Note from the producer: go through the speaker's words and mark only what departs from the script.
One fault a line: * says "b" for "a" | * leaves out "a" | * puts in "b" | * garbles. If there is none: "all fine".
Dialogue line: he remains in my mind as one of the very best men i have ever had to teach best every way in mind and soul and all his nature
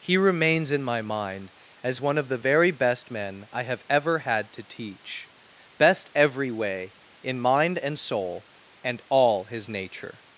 all fine